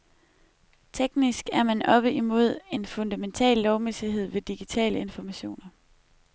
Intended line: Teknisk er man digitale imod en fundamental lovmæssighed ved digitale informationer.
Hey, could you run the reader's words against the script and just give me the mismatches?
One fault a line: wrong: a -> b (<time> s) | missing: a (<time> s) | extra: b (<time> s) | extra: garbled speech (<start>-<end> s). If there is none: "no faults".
wrong: digitale -> oppe (1.9 s)